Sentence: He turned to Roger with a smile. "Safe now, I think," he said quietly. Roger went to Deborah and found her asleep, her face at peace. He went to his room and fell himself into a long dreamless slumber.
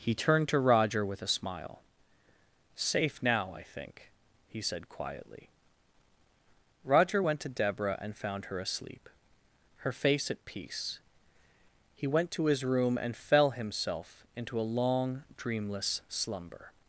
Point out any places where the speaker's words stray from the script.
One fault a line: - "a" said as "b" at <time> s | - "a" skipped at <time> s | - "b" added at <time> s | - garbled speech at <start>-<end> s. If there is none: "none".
none